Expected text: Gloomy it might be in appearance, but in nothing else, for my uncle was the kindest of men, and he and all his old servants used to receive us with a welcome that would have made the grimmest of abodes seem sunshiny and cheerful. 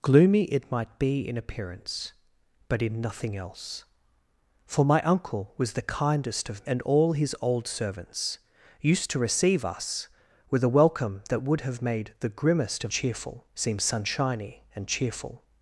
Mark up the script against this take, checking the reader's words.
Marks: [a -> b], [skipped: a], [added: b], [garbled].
Gloomy it might be in appearance, but in nothing else, for my uncle was the kindest of [skipped: men,] and [skipped: he and] all his old servants used to receive us with a welcome that would have made the grimmest of [abodes -> cheerful] seem sunshiny and cheerful.